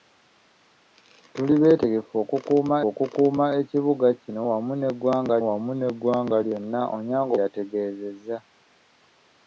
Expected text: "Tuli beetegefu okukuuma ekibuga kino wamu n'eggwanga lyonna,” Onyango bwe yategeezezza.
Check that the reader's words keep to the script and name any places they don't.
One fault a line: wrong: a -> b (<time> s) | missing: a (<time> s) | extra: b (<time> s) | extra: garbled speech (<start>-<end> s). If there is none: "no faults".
extra: okukuuma (2.9 s)
extra: wamu n'eggwanga (5.5 s)
missing: bwe (7.3 s)